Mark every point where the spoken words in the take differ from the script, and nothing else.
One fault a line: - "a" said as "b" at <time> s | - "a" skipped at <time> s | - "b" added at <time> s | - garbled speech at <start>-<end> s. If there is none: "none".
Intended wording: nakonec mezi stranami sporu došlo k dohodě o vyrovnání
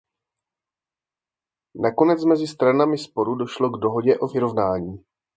none